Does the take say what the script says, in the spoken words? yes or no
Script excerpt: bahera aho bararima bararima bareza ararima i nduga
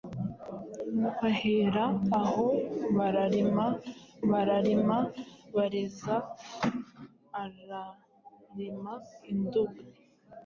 yes